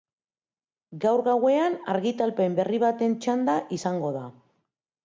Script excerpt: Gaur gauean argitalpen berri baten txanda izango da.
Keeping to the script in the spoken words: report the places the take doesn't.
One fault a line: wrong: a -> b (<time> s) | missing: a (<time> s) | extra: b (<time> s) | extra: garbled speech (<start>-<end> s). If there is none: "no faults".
no faults